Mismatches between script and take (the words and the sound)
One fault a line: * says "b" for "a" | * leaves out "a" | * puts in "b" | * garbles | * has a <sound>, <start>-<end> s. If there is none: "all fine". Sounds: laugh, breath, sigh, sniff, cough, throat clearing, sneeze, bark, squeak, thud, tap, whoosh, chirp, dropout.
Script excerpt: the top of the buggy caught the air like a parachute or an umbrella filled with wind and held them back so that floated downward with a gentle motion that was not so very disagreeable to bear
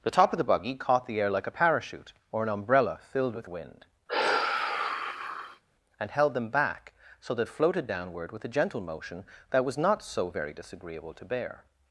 * has a sigh, 4.1-5.6 s